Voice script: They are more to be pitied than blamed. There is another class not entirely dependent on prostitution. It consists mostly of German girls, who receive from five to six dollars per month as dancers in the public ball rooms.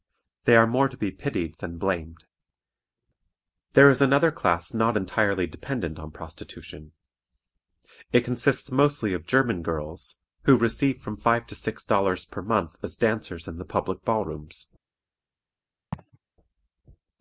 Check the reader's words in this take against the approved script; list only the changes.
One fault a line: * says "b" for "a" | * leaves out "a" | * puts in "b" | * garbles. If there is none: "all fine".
all fine